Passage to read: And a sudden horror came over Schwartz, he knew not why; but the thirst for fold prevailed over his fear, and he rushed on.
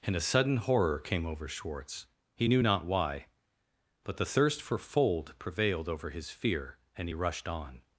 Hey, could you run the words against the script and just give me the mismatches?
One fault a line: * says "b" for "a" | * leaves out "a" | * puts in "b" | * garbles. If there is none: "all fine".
all fine